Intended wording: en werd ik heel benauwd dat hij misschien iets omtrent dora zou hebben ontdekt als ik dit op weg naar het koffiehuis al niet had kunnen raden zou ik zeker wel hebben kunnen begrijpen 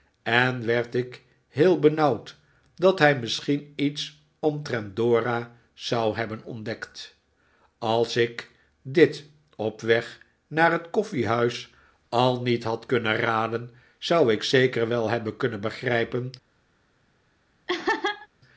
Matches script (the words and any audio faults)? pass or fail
fail